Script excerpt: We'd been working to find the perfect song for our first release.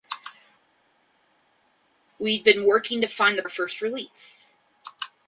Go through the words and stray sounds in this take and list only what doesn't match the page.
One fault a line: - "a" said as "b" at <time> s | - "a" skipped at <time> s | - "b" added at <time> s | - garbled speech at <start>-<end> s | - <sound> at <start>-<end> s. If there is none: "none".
- "perfect song for" skipped at 3.4 s